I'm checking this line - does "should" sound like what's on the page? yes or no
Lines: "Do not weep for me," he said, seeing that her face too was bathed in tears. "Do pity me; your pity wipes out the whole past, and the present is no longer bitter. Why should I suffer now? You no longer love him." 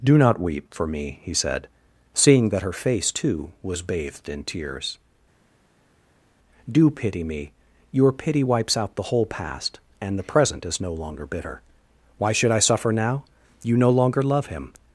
yes